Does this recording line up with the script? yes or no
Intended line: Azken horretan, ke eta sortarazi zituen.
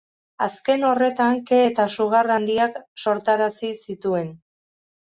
no